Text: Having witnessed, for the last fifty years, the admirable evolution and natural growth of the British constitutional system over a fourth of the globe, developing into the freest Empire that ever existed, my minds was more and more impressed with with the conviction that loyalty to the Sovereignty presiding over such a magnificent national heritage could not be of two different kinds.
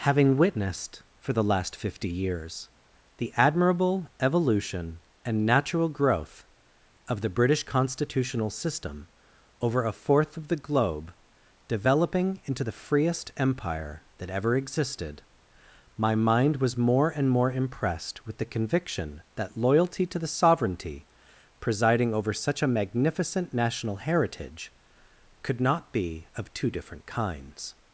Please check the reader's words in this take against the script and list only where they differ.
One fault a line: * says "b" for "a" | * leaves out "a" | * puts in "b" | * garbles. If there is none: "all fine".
* says "mind" for "minds"
* leaves out "with"